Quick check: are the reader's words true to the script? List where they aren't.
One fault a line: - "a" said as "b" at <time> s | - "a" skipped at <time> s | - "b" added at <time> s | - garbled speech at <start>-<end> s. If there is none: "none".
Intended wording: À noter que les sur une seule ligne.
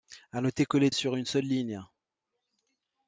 none